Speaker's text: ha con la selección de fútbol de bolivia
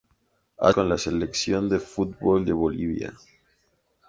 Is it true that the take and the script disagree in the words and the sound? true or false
false